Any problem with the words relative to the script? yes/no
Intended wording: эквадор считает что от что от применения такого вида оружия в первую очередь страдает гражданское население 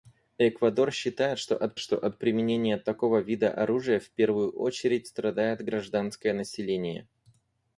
no